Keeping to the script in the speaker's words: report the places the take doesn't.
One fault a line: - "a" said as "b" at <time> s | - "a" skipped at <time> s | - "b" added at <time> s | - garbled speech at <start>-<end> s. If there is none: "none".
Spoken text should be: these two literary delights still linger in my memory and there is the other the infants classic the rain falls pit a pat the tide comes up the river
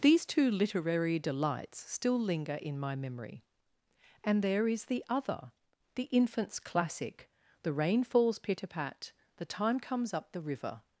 - "tide" said as "time" at 9.4 s